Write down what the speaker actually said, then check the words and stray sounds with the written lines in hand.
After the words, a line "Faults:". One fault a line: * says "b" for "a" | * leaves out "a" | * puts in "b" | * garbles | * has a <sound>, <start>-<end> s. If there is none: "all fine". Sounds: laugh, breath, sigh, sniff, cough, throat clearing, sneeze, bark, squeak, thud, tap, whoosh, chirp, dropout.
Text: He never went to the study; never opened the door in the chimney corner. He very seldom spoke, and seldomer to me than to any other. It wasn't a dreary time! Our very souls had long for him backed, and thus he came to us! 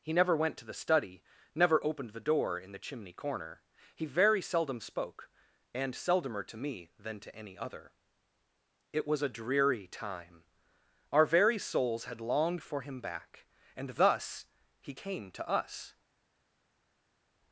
He never went to the study; never opened the door in the chimney corner. He very seldom spoke, and seldomer to me than to any other. It was a dreary time! Our very souls had longed for him back, and thus he came to us!
Faults:
* says "was" for "wasn't"
* says "longed" for "long"
* says "back" for "backed"